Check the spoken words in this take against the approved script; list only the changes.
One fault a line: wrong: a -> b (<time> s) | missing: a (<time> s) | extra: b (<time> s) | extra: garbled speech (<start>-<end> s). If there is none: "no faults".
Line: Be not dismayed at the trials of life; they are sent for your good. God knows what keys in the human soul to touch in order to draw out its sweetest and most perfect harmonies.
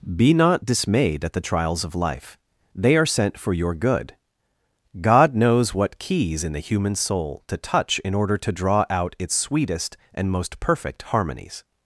no faults